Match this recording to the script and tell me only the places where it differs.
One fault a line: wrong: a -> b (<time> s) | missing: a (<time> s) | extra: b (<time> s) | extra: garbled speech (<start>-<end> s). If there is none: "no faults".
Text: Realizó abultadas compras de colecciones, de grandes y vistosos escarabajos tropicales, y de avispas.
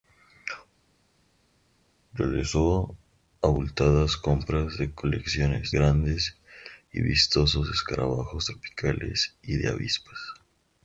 missing: de (5.7 s)